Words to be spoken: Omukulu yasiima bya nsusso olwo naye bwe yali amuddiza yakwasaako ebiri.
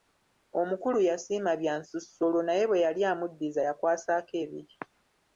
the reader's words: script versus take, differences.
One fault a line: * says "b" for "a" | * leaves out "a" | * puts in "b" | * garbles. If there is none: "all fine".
all fine